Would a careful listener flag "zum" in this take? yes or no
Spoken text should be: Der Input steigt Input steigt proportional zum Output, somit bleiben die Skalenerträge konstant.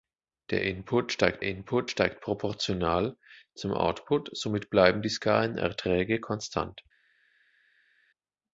no